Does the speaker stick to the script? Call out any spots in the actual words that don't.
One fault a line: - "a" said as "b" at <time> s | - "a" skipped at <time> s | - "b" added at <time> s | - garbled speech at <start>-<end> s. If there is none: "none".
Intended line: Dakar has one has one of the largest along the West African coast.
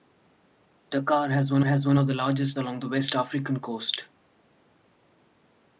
none